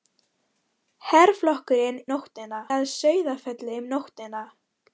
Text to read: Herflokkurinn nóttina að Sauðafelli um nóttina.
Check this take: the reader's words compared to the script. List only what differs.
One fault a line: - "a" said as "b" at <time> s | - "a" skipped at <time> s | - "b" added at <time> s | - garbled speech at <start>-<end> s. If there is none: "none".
none